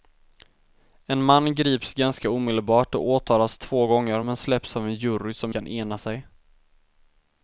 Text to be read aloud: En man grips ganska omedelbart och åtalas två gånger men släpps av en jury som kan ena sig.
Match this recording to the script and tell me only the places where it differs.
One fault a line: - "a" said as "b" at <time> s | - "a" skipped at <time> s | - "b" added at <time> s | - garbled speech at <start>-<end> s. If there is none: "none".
none